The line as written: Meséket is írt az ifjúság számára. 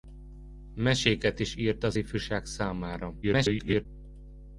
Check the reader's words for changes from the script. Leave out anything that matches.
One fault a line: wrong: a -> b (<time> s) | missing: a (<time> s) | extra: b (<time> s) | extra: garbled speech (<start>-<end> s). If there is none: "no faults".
extra: garbled speech (3.2-3.9 s)